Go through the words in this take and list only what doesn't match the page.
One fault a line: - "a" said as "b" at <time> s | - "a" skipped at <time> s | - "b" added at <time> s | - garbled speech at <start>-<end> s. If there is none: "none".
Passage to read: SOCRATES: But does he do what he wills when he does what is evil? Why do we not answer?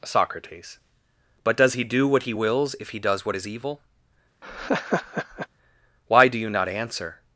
- "when" said as "if" at 2.8 s
- "we" said as "you" at 6.4 s